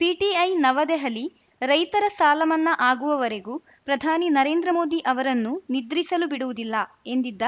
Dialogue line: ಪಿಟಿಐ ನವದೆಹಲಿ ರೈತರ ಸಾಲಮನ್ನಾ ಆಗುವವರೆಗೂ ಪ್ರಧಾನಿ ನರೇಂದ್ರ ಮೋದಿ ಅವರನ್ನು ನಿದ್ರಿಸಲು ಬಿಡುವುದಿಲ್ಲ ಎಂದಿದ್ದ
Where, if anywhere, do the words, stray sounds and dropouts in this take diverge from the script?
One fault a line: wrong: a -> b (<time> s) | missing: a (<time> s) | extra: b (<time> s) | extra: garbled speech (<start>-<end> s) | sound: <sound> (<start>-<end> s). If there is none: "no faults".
no faults